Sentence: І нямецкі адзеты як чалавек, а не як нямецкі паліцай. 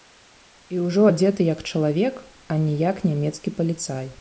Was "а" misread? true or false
false